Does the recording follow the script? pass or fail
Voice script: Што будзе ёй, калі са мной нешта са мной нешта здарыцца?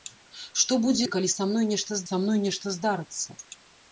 pass